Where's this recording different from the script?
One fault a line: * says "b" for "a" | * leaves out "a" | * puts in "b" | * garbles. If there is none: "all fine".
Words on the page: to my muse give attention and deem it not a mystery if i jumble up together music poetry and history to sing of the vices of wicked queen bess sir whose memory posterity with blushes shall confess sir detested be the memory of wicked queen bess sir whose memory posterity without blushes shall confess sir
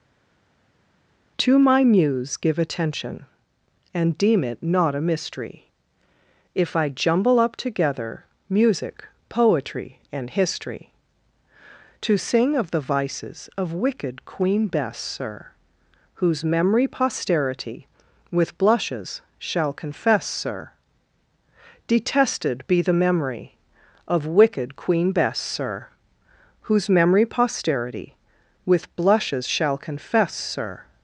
* says "with" for "without"